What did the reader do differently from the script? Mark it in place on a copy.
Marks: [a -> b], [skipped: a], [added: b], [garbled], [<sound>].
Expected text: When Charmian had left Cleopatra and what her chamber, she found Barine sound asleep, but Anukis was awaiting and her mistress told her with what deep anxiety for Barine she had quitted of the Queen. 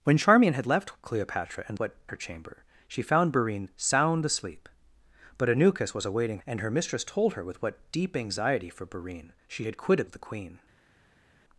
When Charmian had left Cleopatra and what her chamber, she found Barine sound asleep, but Anukis was awaiting and her mistress told her with what deep anxiety for Barine she had quitted of the Queen.